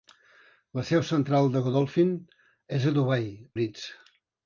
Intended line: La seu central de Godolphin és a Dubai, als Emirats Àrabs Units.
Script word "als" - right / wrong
wrong